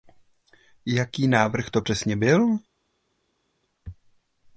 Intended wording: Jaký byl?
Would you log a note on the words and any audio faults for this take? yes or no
yes